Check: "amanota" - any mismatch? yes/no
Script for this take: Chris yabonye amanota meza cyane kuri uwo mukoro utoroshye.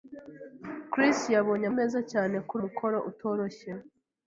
yes